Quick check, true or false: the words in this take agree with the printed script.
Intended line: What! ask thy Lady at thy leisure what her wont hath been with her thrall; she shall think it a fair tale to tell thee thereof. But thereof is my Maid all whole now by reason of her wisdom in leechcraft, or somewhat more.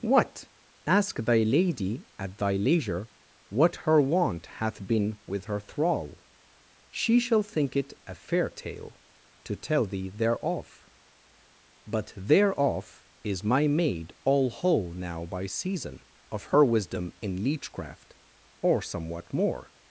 false